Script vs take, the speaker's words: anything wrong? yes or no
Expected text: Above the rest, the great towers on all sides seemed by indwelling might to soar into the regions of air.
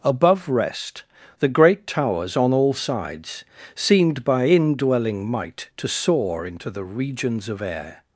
yes